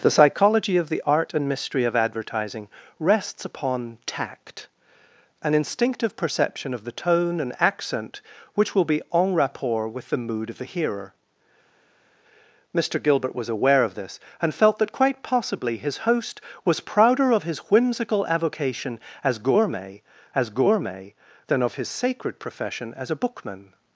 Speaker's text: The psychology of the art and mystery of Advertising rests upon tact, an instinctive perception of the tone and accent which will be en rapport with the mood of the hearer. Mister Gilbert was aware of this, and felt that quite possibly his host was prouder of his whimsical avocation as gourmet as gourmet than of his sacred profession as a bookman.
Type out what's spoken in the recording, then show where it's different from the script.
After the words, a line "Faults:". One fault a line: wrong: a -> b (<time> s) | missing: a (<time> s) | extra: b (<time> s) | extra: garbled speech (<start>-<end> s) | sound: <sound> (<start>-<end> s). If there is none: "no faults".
The psychology of the art and mystery of Advertising rests upon tact, an instinctive perception of the tone and accent which will be en rapport with the mood of the hearer. Mister Gilbert was aware of this, and felt that quite possibly his host was prouder of his whimsical avocation as gourmet as gourmet than of his sacred profession as a bookman.
Faults:
no faults